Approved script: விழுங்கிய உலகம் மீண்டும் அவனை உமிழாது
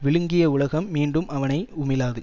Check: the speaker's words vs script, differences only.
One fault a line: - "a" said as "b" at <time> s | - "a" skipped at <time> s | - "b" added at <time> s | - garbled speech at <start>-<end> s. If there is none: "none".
none